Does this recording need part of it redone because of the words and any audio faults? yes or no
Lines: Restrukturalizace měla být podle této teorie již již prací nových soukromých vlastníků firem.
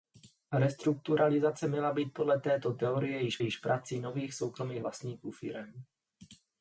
no